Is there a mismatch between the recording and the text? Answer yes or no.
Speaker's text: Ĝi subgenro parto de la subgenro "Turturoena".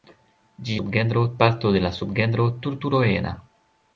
no